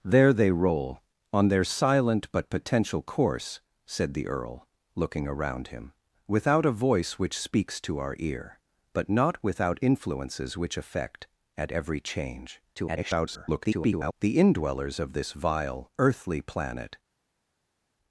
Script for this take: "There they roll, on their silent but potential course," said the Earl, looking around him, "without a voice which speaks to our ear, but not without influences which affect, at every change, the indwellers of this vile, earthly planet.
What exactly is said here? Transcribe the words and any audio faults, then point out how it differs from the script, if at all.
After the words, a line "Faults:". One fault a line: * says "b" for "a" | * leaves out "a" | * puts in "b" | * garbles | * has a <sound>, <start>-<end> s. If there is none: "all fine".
"There they roll, on their silent but potential course," said the Earl, looking around him, "without a voice which speaks to our ear, but not without influences which affect, at every change, [garbled] the indwellers of this vile, earthly planet.
Faults:
* garbles